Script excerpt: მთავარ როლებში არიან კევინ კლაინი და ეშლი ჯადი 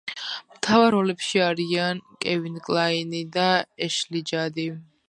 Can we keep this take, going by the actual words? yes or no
yes